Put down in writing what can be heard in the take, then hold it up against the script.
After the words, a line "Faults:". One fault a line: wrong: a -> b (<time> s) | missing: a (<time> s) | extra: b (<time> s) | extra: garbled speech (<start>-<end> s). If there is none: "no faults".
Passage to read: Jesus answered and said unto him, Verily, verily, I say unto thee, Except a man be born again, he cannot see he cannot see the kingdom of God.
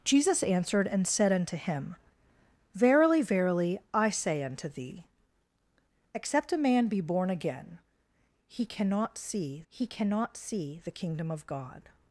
Jesus answered and said unto him, Verily, verily, I say unto thee, Except a man be born again, he cannot see he cannot see the kingdom of God.
Faults:
no faults